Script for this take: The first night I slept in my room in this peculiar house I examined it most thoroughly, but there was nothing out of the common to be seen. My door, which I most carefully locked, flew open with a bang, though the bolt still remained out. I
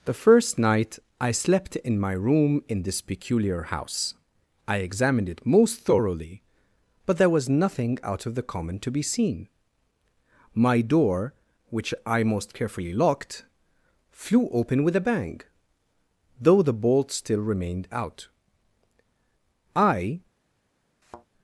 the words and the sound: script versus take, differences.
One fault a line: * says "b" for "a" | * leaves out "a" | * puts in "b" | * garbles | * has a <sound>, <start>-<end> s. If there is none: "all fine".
* has a thud, 21.0-21.3 s